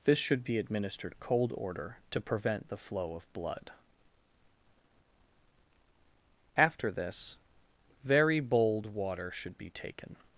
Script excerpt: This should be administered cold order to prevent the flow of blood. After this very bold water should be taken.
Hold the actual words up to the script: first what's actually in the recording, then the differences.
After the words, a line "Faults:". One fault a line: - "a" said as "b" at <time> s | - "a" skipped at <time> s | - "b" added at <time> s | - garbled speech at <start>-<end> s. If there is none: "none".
This should be administered cold order to prevent the flow of blood. After this very bold water should be taken.
Faults:
none